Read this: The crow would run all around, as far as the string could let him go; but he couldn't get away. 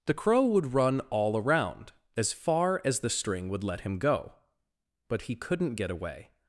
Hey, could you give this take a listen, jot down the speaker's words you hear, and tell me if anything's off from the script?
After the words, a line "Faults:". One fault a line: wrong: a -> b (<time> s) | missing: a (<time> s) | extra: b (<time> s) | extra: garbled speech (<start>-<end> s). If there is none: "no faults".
The crow would run all around, as far as the string would let him go; but he couldn't get away.
Faults:
wrong: could -> would (3.5 s)